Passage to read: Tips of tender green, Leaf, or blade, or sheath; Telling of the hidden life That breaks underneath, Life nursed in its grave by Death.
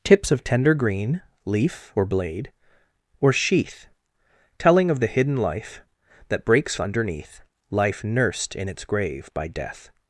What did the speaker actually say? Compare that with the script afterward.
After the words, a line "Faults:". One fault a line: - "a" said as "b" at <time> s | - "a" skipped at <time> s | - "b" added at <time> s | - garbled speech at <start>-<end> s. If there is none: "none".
Tips of tender green, Leaf, or blade, or sheath; Telling of the hidden life That breaks underneath, Life nursed in its grave by Death.
Faults:
none